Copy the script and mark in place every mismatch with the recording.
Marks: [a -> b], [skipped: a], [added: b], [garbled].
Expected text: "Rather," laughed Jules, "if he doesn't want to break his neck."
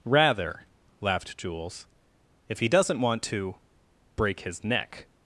"Rather," laughed Jules, "if he doesn't want to break his neck."